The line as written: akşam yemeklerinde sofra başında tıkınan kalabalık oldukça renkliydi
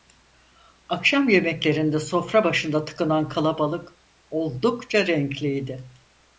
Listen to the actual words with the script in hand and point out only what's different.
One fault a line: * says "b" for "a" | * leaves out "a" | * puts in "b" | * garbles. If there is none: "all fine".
all fine